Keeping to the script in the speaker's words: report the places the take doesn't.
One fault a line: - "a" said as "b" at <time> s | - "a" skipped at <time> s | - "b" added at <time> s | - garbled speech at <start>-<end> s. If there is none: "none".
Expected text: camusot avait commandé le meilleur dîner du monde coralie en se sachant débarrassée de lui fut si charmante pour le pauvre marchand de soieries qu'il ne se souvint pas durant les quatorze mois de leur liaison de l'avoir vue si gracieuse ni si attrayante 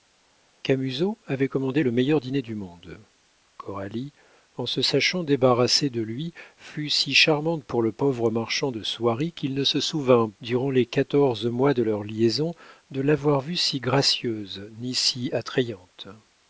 - "pas" skipped at 10.3 s